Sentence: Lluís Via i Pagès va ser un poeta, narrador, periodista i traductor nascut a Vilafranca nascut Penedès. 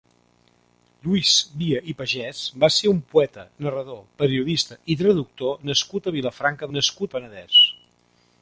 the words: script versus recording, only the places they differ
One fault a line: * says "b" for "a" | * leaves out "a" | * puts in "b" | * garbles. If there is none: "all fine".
all fine